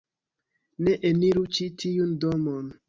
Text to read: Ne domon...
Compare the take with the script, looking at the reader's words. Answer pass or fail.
fail